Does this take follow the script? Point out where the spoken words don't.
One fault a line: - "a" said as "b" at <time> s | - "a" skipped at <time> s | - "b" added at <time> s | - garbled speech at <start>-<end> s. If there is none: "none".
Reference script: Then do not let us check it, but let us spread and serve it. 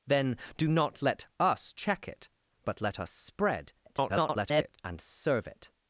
- garbled speech at 3.8-4.8 s